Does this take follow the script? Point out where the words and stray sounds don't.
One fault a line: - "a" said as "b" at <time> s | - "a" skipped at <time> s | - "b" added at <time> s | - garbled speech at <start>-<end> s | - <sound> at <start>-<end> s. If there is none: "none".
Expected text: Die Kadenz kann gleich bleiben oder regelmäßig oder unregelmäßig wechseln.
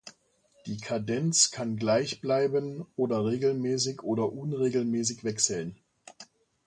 none